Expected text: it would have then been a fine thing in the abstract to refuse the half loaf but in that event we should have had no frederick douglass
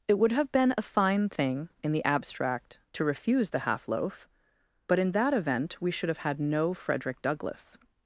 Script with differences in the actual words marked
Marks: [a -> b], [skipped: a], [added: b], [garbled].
it would have [skipped: then] been a fine thing in the abstract to refuse the half loaf but in that event we should have had no frederick douglass